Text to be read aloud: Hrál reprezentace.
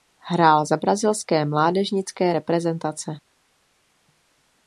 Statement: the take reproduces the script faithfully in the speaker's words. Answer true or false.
false